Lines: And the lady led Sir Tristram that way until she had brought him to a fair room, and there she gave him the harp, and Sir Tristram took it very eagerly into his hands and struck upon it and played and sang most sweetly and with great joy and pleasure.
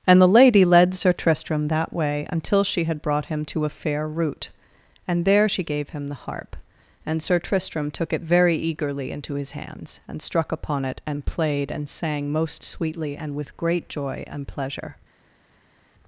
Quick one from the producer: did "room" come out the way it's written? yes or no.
no